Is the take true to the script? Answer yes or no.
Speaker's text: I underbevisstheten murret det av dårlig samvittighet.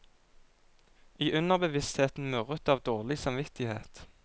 yes